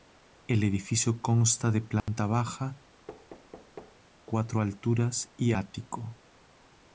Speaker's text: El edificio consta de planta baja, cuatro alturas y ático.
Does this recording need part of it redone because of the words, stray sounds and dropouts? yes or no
yes